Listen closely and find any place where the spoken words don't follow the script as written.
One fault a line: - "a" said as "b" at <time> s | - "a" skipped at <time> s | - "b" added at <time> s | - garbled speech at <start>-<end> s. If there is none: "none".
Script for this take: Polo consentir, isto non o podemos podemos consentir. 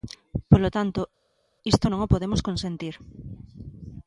- "consentir" said as "tanto" at 0.8 s
- "podemos" skipped at 2.4 s